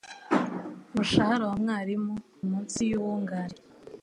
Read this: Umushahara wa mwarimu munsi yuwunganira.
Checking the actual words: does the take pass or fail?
pass